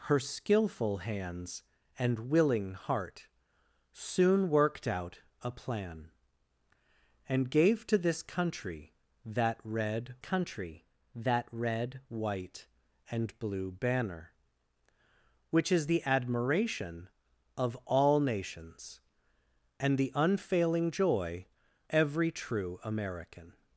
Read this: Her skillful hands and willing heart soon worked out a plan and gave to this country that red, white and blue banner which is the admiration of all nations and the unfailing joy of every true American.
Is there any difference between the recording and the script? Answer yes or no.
yes